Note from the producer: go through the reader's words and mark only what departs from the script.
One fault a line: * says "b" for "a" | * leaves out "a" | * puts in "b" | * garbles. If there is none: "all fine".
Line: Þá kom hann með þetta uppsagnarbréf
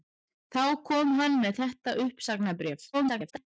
* garbles